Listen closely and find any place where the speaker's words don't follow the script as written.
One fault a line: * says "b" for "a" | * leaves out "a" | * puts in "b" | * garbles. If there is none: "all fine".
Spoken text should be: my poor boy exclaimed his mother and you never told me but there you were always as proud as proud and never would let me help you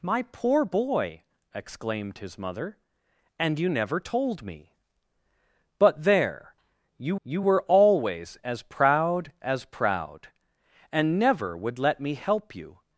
* puts in "you"